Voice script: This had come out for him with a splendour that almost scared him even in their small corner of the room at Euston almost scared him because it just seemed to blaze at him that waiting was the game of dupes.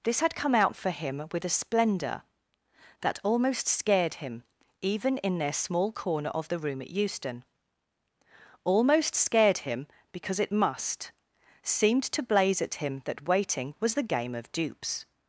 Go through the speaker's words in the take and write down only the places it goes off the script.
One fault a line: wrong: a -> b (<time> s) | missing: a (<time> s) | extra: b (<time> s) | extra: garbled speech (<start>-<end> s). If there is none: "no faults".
wrong: just -> must (10.5 s)